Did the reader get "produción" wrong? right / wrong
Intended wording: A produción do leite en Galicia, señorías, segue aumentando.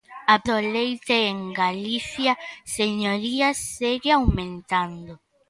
wrong